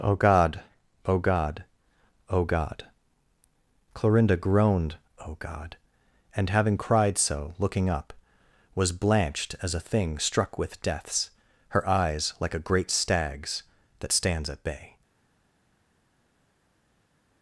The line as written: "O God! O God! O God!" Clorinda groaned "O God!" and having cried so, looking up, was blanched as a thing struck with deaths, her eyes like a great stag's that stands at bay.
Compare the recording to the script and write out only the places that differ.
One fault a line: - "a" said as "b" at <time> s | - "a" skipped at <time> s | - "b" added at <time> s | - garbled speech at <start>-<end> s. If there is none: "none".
none